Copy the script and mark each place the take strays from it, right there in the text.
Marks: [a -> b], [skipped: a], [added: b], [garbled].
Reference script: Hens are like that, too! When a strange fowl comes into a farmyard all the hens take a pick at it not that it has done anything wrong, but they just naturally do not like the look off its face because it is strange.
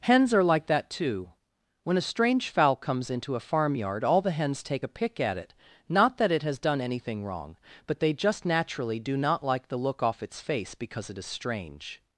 Hens are like that, too! When a strange fowl comes into a farmyard all the hens take a pick at it not that it has done anything wrong, but they just naturally do not like the look off its face because it is strange.